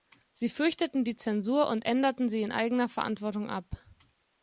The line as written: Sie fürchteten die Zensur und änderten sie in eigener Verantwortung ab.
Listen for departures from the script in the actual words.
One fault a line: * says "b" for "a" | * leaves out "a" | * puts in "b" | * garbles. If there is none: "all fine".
all fine